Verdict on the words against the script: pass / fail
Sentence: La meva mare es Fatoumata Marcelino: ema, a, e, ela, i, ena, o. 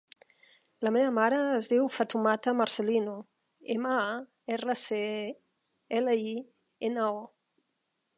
fail